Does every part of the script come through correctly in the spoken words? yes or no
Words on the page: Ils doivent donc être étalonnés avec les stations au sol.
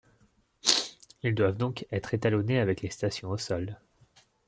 yes